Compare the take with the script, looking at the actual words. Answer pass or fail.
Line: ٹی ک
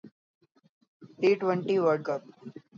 fail